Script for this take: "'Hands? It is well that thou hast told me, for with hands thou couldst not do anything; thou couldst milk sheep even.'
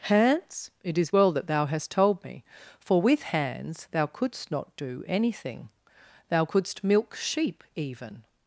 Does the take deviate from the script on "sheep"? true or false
false